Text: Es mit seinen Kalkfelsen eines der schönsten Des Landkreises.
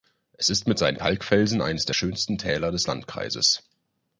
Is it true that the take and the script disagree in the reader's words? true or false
true